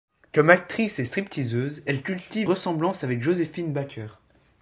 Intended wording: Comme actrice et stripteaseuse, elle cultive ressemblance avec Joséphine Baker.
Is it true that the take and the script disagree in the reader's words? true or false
false